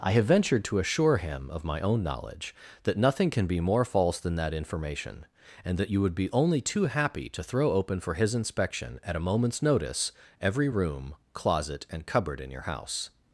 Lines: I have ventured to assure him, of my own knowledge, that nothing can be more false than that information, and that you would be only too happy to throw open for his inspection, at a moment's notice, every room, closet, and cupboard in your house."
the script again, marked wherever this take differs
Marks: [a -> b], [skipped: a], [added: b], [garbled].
I have ventured to assure him, of my own knowledge, that nothing can be more false than that information, and that you would be only too happy to throw open for his inspection, at a moment's notice, every room, closet, and cupboard in your house."